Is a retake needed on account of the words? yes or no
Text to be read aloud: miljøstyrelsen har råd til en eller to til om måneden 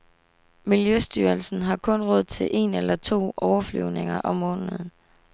yes